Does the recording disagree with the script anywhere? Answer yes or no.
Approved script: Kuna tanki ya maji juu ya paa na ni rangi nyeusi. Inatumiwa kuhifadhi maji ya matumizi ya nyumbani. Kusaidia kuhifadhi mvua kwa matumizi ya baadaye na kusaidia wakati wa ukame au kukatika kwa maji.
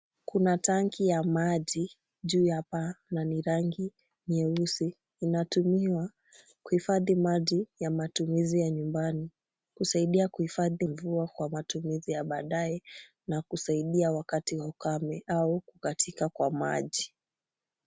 no